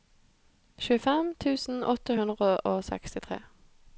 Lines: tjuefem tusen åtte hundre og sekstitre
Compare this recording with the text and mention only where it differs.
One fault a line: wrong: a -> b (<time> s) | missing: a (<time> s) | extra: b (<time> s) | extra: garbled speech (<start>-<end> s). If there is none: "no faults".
no faults